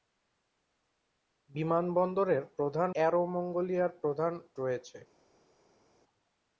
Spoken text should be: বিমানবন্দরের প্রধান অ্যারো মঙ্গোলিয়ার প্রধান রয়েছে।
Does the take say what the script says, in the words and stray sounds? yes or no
yes